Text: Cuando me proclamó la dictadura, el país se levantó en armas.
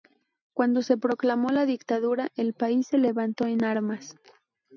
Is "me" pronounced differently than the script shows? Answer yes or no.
yes